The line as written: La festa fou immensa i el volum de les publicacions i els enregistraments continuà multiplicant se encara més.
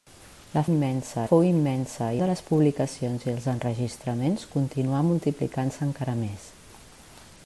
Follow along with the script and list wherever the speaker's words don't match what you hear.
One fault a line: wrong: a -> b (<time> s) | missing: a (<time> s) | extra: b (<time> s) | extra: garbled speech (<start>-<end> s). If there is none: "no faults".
wrong: festa -> immensa (0.7 s)
missing: el volum (2.2 s)